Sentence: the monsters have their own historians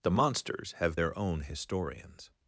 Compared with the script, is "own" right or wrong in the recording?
right